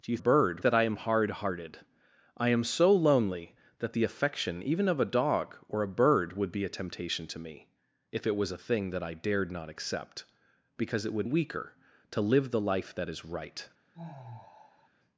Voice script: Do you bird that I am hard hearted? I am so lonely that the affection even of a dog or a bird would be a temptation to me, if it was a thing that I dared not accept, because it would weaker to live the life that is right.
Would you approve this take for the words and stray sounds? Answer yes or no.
no